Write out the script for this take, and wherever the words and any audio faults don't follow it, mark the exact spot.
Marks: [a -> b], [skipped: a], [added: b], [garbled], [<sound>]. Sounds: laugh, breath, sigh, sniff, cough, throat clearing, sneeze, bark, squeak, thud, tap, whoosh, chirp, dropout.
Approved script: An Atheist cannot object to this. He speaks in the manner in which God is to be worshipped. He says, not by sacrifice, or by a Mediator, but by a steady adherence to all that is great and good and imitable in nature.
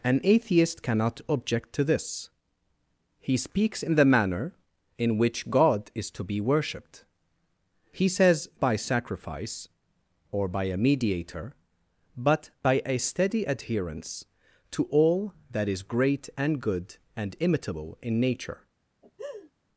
An Atheist cannot object to this. He speaks in the manner in which God is to be worshipped. He says, [skipped: not] by sacrifice, or by a Mediator, but by a steady adherence to all that is great and good and imitable in nature. [laugh]